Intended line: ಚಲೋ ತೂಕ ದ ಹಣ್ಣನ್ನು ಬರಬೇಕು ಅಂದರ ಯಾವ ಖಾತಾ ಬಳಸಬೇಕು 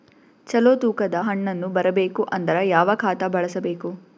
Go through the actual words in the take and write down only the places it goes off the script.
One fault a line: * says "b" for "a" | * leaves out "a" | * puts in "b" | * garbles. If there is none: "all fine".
all fine